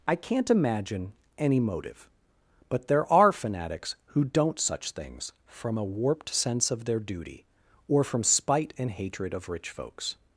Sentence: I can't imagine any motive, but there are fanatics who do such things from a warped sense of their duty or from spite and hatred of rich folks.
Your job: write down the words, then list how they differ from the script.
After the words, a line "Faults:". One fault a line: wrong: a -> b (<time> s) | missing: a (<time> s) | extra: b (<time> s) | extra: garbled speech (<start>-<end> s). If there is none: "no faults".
I can't imagine any motive, but there are fanatics who don't such things from a warped sense of their duty or from spite and hatred of rich folks.
Faults:
wrong: do -> don't (4.2 s)